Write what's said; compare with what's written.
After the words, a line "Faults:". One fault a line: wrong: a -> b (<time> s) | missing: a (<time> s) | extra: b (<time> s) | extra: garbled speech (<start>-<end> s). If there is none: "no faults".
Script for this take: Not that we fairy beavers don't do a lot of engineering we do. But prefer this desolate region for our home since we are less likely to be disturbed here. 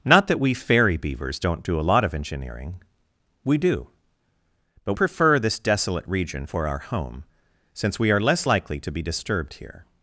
Not that we fairy beavers don't do a lot of engineering we do. But prefer this desolate region for our home since we are less likely to be disturbed here.
Faults:
no faults